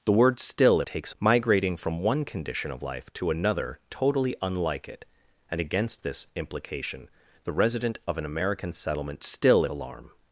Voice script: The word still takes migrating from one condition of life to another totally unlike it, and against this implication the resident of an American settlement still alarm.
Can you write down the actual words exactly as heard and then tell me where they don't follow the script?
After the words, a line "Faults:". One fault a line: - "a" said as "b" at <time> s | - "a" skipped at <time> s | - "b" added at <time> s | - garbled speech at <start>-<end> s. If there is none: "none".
The word still takes migrating from one condition of life to another totally unlike it, and against this implication the resident of an American settlement still alarm.
Faults:
none